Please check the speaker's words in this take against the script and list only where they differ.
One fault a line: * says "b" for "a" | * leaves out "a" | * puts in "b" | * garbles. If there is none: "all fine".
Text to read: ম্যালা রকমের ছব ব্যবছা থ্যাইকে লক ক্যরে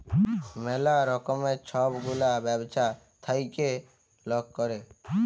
* puts in "গুলা"